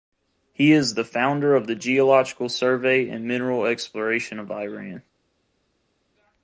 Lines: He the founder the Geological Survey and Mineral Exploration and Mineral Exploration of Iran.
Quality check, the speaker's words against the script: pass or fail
fail